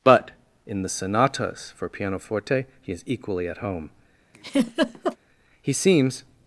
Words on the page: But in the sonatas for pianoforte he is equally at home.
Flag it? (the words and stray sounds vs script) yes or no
yes